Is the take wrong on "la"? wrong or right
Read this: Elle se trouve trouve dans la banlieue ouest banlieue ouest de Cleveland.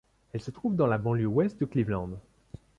right